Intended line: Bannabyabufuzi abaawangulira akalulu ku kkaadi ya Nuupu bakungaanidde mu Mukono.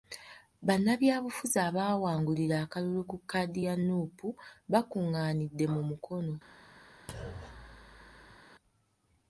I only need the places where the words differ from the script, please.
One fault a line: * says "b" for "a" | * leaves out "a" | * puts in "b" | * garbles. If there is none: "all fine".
all fine